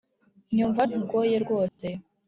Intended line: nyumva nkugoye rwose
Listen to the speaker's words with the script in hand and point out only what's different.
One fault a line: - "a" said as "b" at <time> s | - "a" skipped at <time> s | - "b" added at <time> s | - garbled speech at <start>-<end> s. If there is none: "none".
none